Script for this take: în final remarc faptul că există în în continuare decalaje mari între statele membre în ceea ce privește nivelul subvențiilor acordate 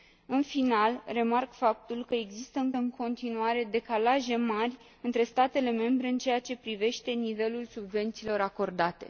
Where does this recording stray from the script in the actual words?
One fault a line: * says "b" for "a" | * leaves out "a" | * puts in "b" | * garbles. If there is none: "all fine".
all fine